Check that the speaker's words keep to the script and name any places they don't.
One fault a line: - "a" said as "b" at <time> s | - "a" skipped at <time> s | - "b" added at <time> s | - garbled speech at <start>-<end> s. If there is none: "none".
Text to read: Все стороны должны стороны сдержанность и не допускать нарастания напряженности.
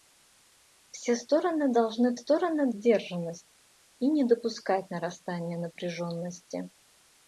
none